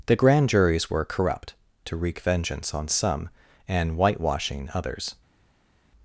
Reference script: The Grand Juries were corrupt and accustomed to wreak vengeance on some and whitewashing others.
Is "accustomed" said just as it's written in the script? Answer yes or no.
no